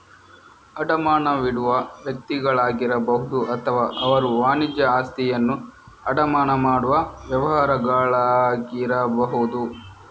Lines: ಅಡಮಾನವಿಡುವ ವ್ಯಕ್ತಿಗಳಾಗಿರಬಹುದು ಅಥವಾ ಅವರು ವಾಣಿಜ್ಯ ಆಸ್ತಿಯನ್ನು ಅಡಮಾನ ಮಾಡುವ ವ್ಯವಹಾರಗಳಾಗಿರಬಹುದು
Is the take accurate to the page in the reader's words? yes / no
yes